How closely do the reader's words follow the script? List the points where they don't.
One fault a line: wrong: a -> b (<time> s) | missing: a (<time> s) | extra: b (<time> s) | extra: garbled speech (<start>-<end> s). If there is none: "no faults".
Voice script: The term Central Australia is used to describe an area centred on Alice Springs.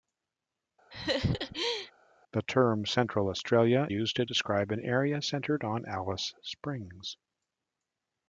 missing: is (3.9 s)